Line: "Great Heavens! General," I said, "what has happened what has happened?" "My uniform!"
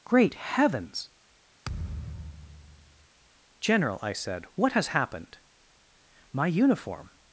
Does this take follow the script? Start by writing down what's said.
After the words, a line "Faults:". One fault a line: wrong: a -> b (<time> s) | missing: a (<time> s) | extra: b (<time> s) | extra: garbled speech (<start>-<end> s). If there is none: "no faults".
"Great Heavens! General," I said, "what has happened?" "My uniform!"
Faults:
missing: what has happened (5.4 s)